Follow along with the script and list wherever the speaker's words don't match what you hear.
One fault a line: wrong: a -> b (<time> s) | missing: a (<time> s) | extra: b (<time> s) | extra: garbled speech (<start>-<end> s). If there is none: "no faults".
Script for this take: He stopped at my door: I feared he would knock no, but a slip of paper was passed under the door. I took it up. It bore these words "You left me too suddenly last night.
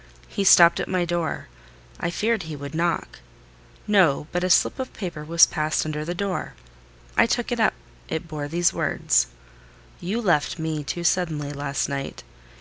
no faults